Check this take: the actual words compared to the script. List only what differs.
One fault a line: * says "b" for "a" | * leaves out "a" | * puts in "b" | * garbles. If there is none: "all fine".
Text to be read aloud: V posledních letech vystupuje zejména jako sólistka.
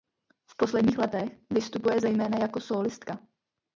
all fine